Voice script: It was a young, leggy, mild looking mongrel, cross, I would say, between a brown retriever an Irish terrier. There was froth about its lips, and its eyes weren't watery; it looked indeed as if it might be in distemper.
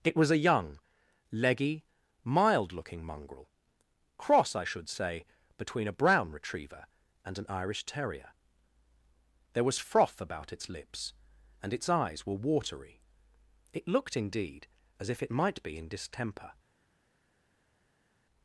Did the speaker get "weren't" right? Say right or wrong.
wrong